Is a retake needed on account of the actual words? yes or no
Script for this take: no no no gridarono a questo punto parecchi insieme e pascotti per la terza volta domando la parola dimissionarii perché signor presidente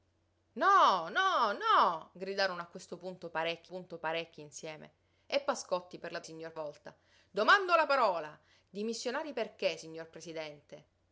yes